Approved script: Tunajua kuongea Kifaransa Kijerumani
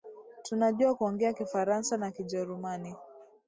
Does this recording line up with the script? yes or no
no